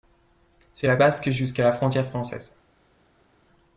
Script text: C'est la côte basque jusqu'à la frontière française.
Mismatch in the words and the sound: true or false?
true